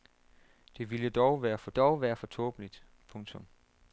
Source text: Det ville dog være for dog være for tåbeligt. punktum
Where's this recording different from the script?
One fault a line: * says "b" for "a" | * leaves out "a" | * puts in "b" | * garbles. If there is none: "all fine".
all fine